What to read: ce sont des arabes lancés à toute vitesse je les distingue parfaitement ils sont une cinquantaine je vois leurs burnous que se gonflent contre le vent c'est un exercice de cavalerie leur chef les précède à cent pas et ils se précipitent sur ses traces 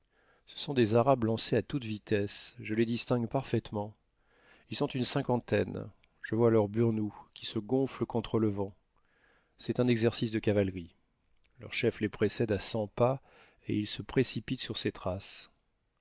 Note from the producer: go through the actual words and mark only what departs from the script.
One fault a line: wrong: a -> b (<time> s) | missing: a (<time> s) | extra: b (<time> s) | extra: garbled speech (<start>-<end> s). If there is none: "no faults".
wrong: que -> qui (7.3 s)